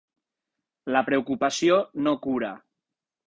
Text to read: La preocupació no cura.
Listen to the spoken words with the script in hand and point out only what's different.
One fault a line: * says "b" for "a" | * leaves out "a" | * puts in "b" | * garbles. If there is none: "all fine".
all fine